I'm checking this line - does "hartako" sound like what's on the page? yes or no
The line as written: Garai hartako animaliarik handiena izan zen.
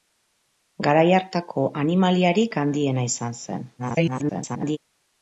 yes